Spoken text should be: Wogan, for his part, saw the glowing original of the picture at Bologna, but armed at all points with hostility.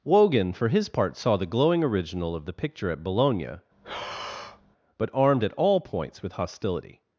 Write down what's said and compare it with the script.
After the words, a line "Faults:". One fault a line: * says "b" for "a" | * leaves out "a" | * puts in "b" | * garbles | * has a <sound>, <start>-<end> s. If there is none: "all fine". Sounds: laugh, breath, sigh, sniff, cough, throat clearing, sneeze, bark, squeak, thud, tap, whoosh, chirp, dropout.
Wogan, for his part, saw the glowing original of the picture at Bologna, but armed at all points with hostility.
Faults:
* has a breath, 3.7-4.8 s